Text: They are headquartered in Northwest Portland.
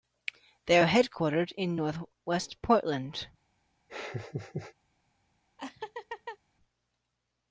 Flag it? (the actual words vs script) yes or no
no